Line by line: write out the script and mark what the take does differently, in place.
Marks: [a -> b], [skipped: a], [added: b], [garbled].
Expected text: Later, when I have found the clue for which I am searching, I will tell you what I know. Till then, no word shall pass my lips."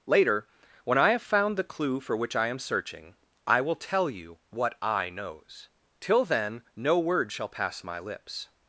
Later, when I have found the clue for which I am searching, I will tell you what I [know. -> knows] Till then, no word shall pass my lips."